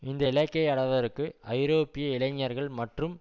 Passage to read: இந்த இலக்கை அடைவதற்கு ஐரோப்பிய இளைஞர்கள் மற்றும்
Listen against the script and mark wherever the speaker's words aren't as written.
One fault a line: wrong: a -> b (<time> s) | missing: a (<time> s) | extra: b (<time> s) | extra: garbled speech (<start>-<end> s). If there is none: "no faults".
no faults